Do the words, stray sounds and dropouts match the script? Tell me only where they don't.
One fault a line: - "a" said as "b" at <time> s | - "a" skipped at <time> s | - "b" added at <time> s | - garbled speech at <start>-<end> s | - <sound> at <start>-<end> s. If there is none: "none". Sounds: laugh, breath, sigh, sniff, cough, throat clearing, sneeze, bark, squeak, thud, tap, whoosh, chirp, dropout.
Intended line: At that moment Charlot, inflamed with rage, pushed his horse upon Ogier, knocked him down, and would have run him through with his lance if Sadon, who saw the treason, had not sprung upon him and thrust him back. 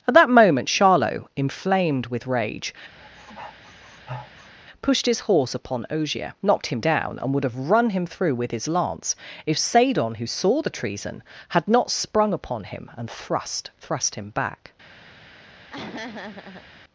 - sniff at 3.0-4.5 s
- "thrust" added at 13.8 s
- laugh at 15.7-16.6 s